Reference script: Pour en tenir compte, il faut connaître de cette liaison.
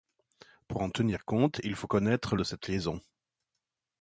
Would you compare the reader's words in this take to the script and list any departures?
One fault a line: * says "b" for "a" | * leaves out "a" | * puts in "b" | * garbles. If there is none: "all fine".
all fine